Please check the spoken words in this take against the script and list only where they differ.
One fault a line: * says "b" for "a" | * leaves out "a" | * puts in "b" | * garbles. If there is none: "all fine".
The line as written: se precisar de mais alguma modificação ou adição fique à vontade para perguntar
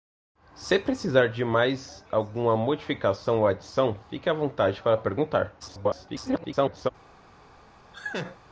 * garbles